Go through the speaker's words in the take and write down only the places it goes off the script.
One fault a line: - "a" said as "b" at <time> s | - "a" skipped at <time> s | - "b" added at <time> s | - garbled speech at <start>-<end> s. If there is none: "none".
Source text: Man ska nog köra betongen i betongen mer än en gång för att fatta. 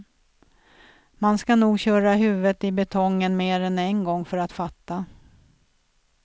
- "betongen" said as "huvudet" at 2.1 s